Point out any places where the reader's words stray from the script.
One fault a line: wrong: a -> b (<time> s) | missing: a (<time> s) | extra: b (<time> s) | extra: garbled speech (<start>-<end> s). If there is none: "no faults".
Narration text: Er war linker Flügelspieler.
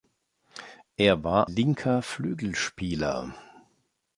no faults